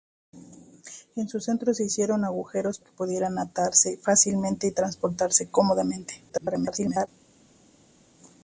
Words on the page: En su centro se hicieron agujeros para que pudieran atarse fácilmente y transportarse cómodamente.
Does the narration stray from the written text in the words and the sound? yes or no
yes